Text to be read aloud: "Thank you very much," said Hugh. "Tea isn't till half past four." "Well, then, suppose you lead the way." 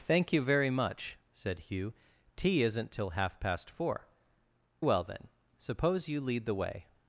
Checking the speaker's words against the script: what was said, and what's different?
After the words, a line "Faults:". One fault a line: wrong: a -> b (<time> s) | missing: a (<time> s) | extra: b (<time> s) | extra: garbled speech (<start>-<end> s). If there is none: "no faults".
"Thank you very much," said Hugh. "Tea isn't till half past four." "Well, then, suppose you lead the way."
Faults:
no faults